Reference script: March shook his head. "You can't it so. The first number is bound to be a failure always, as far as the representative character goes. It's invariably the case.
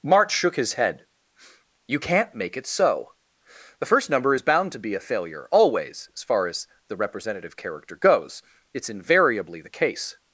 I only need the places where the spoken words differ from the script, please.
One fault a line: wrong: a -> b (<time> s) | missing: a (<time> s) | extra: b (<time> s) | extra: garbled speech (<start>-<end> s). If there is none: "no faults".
extra: make (2.3 s)